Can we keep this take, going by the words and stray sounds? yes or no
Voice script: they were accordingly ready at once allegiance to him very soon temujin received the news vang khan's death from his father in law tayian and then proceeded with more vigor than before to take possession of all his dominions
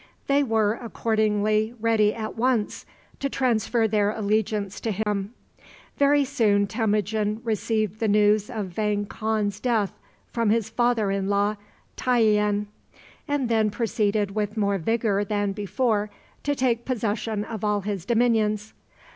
no